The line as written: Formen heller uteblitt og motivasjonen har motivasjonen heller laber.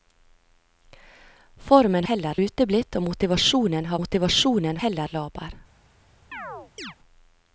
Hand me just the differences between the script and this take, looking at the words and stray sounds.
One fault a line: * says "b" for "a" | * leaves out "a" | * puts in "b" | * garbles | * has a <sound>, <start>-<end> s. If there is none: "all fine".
* has a chirp, 6.3-7.0 s